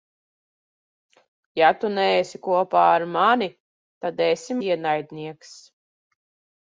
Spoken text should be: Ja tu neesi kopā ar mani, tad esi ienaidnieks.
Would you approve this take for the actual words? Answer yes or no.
yes